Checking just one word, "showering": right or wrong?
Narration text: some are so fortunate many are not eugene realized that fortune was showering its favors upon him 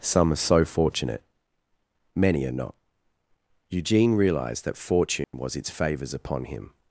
wrong